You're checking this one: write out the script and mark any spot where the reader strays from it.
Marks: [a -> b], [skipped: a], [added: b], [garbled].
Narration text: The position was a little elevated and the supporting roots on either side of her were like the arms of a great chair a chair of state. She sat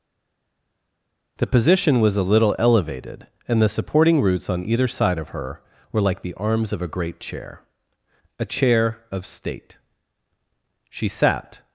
The position was a little elevated and the supporting roots on either side of her were like the arms of a great chair a chair of state. She sat